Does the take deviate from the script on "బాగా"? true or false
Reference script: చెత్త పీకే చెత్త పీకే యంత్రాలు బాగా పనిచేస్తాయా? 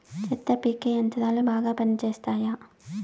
false